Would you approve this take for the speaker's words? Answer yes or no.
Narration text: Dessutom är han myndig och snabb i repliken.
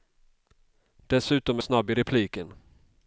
no